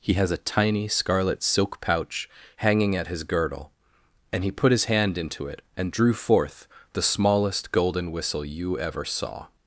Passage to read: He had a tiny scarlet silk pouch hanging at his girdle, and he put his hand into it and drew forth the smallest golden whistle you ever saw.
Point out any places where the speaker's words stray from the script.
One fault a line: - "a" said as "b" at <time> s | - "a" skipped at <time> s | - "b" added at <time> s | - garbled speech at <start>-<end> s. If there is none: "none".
- "had" said as "has" at 0.1 s